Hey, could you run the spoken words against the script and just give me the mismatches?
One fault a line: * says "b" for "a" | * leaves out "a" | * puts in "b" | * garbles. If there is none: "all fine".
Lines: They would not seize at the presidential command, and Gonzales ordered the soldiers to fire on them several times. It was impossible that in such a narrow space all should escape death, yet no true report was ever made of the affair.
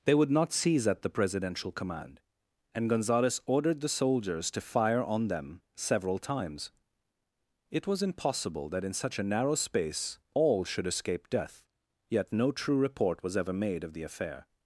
all fine